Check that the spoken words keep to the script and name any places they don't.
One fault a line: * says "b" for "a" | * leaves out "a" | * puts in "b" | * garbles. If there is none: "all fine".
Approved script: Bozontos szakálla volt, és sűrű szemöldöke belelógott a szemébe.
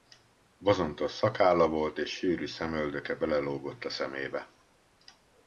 all fine